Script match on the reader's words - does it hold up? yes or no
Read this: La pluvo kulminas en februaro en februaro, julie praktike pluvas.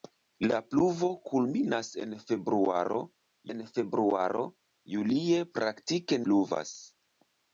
yes